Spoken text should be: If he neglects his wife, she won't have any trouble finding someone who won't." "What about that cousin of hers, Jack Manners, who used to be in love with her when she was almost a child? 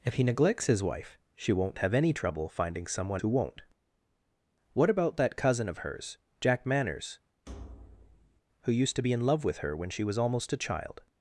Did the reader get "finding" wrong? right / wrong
right